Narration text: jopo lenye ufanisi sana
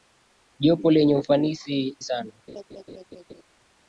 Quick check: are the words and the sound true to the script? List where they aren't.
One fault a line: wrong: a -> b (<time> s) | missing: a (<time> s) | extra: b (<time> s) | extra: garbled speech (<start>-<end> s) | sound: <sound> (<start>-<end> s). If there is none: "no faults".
sound: laugh (2.5-3.4 s)